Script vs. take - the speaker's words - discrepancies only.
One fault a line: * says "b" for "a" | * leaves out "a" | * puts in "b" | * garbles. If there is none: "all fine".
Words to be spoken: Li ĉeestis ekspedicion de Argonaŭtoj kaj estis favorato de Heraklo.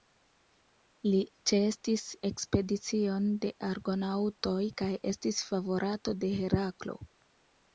all fine